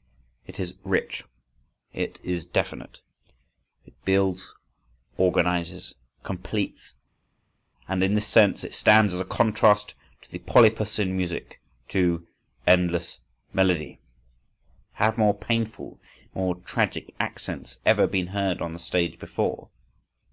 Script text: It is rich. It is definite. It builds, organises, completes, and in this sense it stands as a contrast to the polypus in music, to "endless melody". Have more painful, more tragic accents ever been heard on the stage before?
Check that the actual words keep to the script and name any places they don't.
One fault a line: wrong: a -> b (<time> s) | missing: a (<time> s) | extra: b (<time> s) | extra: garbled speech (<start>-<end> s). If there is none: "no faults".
no faults